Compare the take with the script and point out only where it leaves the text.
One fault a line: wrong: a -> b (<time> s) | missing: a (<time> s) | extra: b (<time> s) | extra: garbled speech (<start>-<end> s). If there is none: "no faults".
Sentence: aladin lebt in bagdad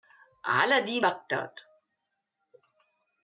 missing: lebt in (1.1 s)